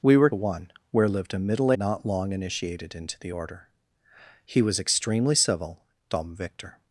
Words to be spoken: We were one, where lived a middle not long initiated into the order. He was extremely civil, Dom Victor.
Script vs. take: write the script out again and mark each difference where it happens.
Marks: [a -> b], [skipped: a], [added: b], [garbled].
We were one, where lived a middle not long initiated into the order. He was extremely civil, Dom Victor.